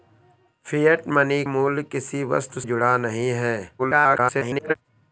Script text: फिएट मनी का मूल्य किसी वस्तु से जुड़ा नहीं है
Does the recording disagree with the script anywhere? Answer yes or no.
yes